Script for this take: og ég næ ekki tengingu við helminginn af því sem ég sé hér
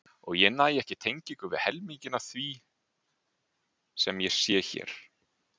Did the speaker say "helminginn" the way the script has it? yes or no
yes